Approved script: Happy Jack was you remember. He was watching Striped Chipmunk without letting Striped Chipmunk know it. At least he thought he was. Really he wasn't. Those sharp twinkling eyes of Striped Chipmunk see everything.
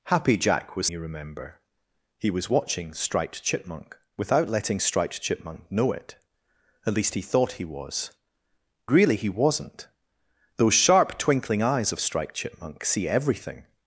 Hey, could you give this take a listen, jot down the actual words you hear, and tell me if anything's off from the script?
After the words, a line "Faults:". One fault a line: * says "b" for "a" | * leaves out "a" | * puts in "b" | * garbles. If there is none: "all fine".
Happy Jack was you remember. He was watching Striped Chipmunk without letting Striped Chipmunk know it. At least he thought he was. Really he wasn't. Those sharp twinkling eyes of Striped Chipmunk see everything.
Faults:
all fine